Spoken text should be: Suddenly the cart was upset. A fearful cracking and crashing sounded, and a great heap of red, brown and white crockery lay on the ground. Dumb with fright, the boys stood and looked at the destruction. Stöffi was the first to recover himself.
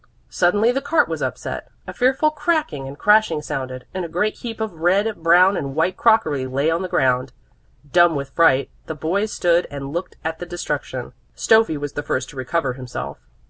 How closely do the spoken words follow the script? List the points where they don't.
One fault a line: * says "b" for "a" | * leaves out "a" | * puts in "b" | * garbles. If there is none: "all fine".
all fine